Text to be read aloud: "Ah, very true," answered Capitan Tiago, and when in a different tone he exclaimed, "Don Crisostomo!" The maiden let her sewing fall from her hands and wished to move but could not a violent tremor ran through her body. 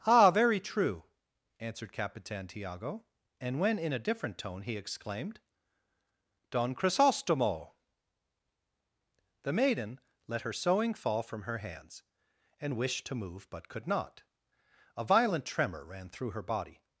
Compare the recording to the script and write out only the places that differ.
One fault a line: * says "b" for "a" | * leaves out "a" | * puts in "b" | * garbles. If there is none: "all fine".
all fine